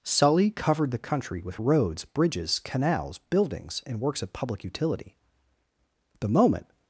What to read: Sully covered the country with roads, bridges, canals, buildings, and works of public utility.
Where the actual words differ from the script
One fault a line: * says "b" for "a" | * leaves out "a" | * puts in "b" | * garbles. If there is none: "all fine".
* puts in "The moment"